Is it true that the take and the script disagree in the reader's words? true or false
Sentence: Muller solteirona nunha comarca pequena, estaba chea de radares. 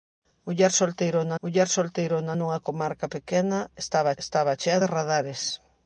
true